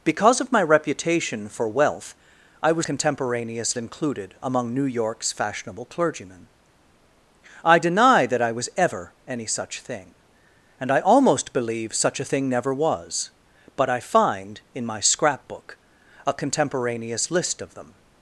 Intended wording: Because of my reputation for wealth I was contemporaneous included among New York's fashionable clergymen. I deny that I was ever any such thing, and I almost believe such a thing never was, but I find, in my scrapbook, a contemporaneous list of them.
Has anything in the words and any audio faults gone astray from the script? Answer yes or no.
no